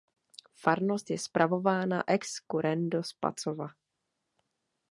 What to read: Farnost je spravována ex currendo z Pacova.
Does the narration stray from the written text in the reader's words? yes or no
no